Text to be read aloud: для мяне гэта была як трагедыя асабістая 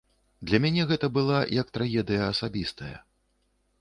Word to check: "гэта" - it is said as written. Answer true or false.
true